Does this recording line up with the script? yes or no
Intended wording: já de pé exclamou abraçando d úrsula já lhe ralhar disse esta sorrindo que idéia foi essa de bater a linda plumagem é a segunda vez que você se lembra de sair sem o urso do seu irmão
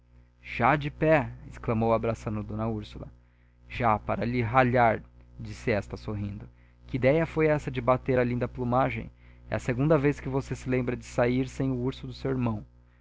no